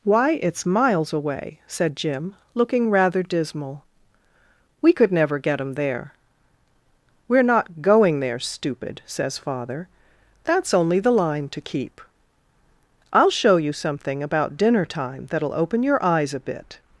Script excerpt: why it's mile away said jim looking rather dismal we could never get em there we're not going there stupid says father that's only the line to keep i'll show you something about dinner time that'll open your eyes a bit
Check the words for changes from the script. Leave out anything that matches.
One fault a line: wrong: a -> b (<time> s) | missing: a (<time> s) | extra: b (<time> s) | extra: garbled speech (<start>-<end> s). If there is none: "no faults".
wrong: mile -> miles (0.7 s)